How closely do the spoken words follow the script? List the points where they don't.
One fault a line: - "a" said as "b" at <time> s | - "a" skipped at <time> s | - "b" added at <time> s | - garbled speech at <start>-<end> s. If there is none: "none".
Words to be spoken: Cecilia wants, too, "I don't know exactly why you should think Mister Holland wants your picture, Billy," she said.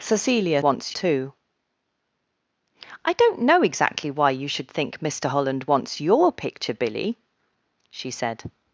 none